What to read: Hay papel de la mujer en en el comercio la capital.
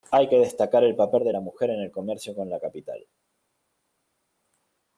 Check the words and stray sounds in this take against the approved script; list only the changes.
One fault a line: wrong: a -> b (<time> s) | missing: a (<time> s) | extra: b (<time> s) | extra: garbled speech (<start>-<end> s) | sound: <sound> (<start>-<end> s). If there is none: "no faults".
extra: que destacar el (0.3 s)
missing: en (1.8 s)
extra: con (2.3 s)